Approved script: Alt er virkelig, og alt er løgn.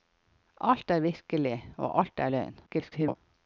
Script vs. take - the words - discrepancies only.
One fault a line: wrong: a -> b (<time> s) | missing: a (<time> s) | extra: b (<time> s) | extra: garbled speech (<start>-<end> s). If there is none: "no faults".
extra: garbled speech (2.7-3.2 s)